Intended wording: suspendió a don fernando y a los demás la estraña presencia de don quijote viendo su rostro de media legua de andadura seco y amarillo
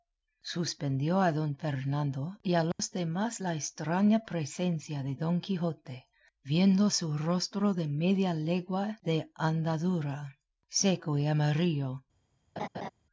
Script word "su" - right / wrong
right